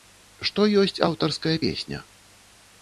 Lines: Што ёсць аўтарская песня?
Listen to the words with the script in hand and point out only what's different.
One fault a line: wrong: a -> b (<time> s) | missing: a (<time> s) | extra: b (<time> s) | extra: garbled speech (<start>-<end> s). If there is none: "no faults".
no faults